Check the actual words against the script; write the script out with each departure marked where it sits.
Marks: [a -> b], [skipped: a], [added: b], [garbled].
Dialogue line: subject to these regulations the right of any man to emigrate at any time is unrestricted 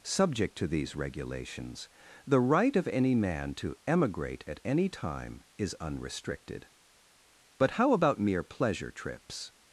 subject to these regulations the right of any man to emigrate at any time is unrestricted [added: but how about mere pleasure trips]